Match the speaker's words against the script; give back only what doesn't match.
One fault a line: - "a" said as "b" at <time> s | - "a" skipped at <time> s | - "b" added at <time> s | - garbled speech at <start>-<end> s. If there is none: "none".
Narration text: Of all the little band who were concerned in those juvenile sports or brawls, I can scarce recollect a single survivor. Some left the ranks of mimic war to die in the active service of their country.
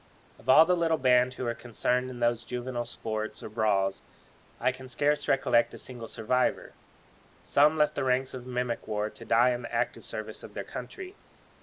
none